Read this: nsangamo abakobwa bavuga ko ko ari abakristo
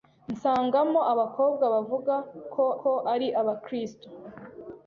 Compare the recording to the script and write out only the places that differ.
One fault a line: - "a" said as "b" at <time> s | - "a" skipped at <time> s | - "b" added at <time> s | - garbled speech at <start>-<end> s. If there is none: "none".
none